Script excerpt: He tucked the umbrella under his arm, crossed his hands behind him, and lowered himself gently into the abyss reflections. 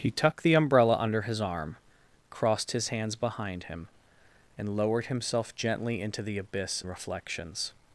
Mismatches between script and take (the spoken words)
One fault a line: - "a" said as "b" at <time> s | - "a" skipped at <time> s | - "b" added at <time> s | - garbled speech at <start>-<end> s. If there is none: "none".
none